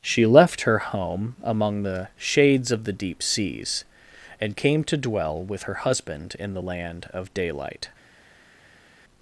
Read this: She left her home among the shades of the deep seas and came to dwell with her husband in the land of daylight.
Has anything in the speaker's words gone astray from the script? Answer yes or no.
no